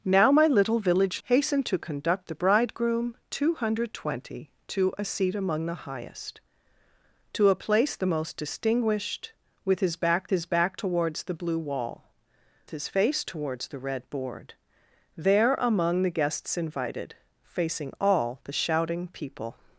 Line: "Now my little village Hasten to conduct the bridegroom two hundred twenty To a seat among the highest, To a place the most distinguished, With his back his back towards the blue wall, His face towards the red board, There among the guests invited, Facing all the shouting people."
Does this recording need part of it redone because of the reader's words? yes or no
no